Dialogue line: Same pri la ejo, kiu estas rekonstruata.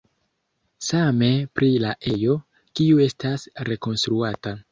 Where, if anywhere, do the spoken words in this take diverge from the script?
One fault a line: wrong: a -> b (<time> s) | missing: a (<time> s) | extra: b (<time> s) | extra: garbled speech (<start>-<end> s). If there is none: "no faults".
no faults